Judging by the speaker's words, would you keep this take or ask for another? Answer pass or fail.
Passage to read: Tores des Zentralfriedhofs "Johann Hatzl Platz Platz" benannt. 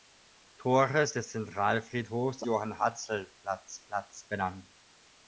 pass